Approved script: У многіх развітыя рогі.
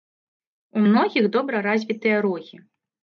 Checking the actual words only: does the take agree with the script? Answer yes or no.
no